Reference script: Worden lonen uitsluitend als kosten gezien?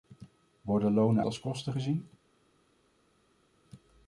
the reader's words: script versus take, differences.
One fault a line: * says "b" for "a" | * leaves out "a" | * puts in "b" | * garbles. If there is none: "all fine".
* leaves out "uitsluitend"